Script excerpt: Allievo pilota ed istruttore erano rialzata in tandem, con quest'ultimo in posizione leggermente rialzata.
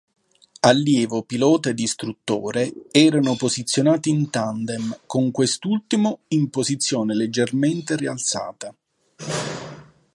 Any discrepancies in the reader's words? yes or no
yes